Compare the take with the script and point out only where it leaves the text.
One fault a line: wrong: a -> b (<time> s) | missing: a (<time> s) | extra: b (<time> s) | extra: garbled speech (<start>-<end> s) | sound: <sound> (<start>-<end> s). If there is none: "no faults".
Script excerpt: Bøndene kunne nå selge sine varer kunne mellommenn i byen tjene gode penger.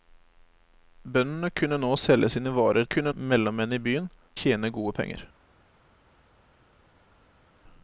no faults